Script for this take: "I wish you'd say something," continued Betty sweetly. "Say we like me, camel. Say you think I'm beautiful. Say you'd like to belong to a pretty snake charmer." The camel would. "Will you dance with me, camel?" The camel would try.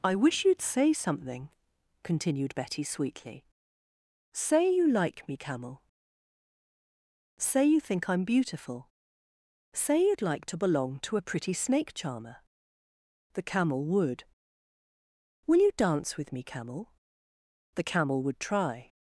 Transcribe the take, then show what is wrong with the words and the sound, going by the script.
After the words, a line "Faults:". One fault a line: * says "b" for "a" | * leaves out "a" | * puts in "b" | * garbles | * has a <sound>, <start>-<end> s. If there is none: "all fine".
"I wish you'd say something," continued Betty sweetly. "Say you like me, camel. Say you think I'm beautiful. Say you'd like to belong to a pretty snake charmer." The camel would. "Will you dance with me, camel?" The camel would try.
Faults:
* says "you" for "we"